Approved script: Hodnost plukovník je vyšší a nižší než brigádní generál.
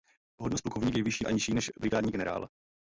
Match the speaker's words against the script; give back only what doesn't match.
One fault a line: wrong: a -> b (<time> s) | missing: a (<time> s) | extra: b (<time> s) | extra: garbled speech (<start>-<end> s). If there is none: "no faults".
no faults